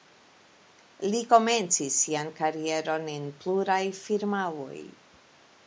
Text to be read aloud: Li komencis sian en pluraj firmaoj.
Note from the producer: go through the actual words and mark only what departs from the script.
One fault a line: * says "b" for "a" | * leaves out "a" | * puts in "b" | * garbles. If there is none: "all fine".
* puts in "karieron"